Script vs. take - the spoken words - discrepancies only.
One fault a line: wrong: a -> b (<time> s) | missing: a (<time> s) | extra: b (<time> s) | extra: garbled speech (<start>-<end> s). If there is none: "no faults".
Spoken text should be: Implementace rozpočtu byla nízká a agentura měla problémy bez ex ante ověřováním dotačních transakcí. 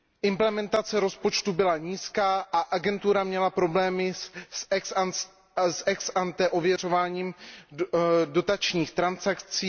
wrong: bez -> s (4.1 s)